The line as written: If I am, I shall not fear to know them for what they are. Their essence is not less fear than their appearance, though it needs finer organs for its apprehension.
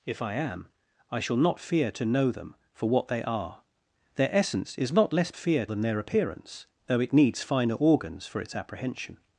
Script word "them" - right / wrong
right